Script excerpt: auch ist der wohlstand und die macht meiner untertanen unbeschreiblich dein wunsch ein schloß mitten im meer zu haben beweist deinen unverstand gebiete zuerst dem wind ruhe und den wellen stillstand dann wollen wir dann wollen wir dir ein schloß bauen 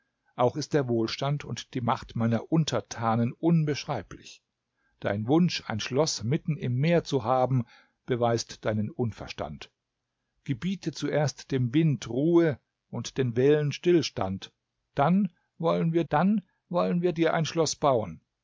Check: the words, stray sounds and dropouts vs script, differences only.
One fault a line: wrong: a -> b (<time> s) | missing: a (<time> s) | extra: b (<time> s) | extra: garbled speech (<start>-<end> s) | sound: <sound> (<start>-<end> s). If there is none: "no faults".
no faults